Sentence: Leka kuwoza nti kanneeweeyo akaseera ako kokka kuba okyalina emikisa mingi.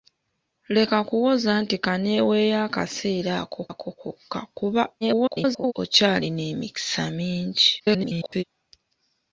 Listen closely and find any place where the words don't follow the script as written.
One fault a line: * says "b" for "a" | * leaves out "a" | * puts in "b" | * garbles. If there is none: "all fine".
* puts in "ako"
* garbles
* garbles